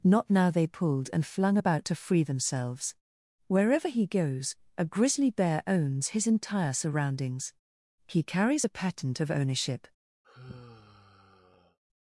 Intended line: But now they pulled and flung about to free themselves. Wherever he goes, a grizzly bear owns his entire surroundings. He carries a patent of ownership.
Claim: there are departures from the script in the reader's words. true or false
true